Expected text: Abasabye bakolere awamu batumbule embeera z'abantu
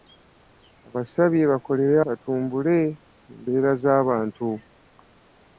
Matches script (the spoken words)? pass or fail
fail